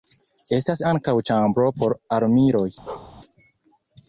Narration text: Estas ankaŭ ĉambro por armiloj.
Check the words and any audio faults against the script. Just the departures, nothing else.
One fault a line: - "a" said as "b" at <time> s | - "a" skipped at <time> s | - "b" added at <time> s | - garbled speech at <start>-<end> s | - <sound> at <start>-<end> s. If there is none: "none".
- bark at 2.9-3.2 s